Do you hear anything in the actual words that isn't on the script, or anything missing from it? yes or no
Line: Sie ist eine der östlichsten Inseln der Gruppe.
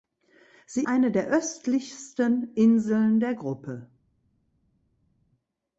yes